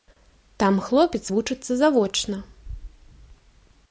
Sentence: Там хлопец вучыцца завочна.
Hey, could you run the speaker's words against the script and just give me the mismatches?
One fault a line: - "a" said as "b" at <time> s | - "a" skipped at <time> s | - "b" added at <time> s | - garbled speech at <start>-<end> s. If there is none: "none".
none